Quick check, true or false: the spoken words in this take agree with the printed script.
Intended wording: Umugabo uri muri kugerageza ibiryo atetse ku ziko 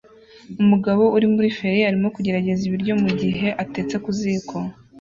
false